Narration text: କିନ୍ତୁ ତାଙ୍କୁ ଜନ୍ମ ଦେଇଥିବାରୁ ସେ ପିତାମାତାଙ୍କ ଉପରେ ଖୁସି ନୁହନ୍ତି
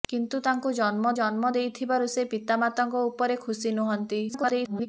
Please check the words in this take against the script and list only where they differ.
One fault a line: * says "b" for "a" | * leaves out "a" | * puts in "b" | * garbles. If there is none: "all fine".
* puts in "ଜନ୍ମ"
* garbles